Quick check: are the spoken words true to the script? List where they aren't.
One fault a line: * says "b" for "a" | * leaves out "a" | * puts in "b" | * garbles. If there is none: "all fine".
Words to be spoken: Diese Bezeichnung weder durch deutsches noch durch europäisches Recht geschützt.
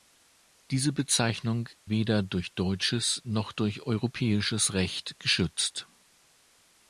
all fine